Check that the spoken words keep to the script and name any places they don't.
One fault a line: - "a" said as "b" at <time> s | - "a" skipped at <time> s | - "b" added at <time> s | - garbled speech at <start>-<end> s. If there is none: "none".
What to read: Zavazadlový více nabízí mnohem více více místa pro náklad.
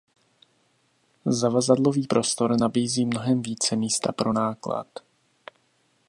- "více" said as "prostor" at 2.0 s
- "více" skipped at 3.8 s